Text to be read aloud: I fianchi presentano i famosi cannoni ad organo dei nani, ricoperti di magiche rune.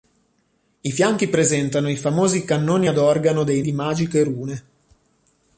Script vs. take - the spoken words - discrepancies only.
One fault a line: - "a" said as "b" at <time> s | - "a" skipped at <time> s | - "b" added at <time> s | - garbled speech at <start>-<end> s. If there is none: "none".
- "nani ricoperti" skipped at 3.6 s